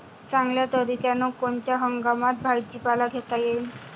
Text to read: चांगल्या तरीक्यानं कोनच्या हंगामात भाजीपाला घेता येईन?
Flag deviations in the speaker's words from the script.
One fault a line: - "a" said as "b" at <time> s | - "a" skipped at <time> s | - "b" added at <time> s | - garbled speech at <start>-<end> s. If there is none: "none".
none